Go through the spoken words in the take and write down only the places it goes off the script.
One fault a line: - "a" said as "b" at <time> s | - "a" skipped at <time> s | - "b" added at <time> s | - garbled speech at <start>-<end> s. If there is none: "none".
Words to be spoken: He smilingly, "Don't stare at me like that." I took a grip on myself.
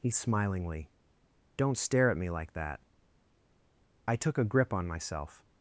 none